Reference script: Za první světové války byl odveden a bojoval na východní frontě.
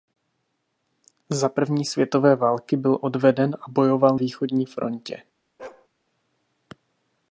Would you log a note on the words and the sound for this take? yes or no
yes